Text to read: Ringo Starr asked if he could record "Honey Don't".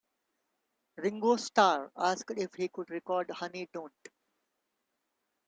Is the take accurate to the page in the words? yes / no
yes